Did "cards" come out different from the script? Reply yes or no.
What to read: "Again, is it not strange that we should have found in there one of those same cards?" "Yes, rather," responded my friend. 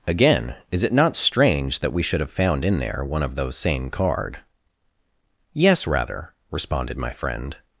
yes